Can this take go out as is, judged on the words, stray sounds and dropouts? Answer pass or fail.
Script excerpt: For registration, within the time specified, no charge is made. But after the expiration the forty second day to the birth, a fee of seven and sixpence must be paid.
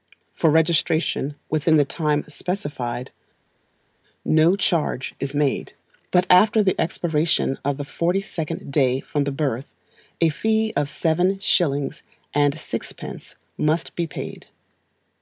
fail